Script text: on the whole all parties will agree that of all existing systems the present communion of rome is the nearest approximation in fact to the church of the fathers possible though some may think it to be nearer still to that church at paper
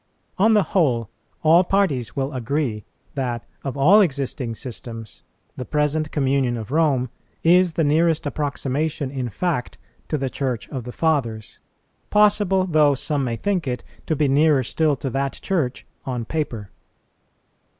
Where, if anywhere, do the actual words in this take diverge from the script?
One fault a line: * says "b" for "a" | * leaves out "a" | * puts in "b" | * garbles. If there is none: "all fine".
* says "on" for "at"